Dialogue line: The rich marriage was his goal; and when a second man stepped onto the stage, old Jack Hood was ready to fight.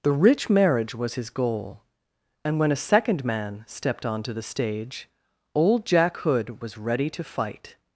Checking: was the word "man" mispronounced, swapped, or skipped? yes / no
no